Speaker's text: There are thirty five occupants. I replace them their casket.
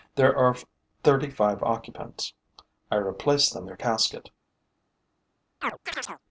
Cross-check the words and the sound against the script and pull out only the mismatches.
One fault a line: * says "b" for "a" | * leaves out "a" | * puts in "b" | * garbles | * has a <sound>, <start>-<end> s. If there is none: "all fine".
* has a chirp, 5.6-6.2 s